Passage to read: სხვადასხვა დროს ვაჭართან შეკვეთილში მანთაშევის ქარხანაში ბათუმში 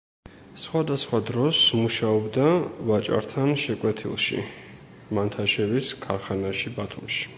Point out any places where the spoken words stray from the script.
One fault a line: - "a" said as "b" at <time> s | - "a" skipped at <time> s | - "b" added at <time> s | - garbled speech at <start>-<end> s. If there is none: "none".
- "მუშაობდა" added at 1.8 s